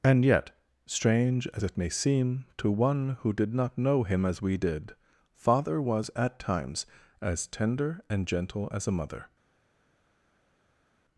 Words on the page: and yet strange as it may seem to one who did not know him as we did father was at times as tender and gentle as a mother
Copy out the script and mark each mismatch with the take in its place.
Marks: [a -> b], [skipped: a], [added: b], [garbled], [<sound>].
and yet strange as it may seem to one who did not know him as we did father was at times as tender and gentle as a mother